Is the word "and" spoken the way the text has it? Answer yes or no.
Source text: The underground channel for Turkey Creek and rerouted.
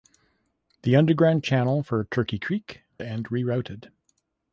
yes